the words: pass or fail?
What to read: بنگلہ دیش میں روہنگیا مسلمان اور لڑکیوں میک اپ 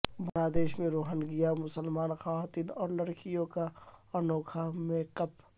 fail